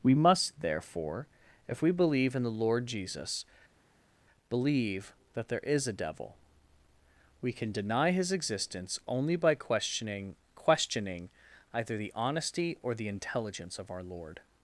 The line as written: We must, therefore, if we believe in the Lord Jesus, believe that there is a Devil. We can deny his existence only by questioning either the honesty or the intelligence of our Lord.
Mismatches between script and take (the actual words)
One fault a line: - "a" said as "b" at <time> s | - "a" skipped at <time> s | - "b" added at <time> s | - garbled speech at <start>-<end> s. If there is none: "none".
- "questioning" added at 10.6 s